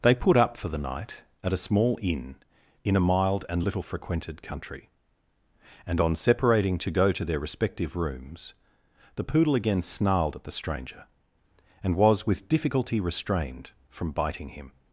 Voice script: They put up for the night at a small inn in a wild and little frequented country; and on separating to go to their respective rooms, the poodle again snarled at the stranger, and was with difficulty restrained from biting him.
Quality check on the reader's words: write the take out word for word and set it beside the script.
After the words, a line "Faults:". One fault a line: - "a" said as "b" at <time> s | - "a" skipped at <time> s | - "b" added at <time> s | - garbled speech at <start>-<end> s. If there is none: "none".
They put up for the night at a small inn in a mild and little frequented country; and on separating to go to their respective rooms, the poodle again snarled at the stranger, and was with difficulty restrained from biting him.
Faults:
- "wild" said as "mild" at 3.0 s